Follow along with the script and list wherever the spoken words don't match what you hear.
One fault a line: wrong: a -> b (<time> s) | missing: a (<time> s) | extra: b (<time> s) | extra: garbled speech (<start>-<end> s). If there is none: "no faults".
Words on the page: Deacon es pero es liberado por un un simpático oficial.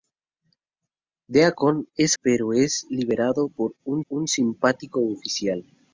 no faults